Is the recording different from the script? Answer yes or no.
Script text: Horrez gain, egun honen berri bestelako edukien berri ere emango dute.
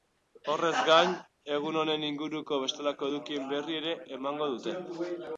yes